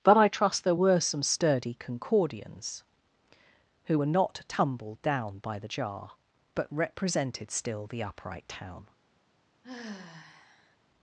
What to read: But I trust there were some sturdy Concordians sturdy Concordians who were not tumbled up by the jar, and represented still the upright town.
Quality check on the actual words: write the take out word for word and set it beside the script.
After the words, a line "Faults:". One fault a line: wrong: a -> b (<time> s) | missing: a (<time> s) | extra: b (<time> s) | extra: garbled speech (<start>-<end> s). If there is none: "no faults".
But I trust there were some sturdy Concordians who were not tumbled down by the jar, but represented still the upright town.
Faults:
missing: sturdy Concordians (2.8 s)
wrong: up -> down (5.0 s)
wrong: and -> but (6.5 s)